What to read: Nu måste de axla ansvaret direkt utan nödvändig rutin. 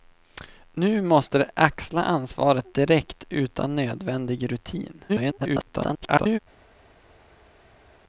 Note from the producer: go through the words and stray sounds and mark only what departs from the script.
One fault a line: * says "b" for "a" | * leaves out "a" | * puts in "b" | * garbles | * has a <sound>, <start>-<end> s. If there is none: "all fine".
* garbles